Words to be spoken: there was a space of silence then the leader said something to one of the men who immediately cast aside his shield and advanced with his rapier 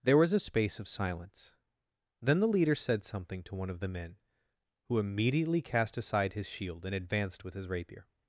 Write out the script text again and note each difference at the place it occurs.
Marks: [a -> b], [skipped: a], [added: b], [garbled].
there was a space of silence then the leader said something to one of the men who immediately cast aside his shield and advanced with his rapier